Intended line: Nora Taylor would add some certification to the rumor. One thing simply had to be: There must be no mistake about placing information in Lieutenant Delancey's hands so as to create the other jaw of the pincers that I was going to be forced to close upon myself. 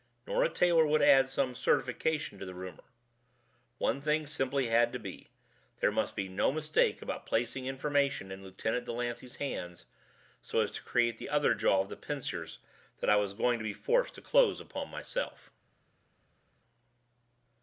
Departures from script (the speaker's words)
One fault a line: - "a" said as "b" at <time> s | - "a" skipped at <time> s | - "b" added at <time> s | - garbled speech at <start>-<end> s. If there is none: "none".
none